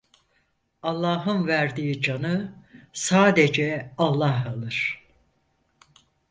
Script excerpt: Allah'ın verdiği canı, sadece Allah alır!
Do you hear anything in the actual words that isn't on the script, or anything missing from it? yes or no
no